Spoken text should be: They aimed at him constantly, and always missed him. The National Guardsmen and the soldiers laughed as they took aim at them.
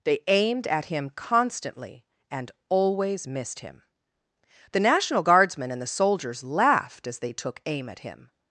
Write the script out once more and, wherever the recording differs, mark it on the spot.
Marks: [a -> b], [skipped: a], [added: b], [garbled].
They aimed at him constantly, and always missed him. The National Guardsmen and the soldiers laughed as they took aim at [them. -> him]